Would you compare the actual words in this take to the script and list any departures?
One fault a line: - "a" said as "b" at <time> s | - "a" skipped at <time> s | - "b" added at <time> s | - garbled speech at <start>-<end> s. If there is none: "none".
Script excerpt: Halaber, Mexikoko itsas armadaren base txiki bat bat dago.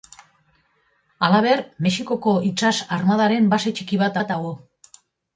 none